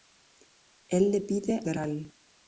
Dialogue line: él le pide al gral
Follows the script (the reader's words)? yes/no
no